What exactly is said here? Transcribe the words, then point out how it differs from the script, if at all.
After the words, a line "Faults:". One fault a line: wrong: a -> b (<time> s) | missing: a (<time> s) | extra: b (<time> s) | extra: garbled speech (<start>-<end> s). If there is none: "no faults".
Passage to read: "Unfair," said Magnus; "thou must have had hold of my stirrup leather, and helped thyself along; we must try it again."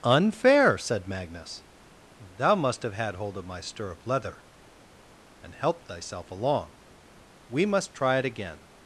"Unfair," said Magnus; "thou must have had hold of my stirrup leather, and helped thyself along; we must try it again."
Faults:
no faults